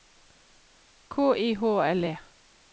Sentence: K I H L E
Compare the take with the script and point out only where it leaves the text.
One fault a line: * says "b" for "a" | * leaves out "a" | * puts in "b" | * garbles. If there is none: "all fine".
all fine